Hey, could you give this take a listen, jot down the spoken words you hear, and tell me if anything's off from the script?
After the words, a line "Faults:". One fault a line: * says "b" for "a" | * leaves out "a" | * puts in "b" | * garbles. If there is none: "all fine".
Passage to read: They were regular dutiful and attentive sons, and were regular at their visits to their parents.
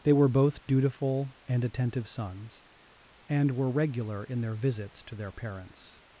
They were both dutiful and attentive sons, and were regular in their visits to their parents.
Faults:
* says "both" for "regular"
* says "in" for "at"